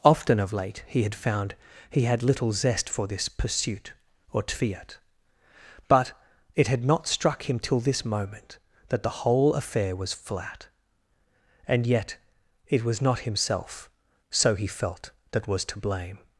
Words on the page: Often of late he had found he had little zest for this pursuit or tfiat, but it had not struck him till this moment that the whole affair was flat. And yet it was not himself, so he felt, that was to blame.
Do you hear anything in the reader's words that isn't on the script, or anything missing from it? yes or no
no